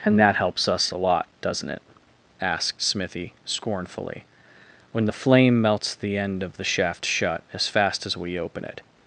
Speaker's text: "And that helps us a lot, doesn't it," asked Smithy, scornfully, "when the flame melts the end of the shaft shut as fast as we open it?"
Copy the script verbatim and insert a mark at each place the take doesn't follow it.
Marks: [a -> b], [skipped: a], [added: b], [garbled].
"And that helps us a lot, doesn't it," asked Smithy, scornfully, "when the flame melts the end of the shaft shut as fast as we open it?"